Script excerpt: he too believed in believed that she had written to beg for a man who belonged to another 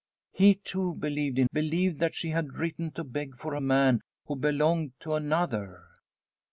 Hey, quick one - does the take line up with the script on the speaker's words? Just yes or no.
yes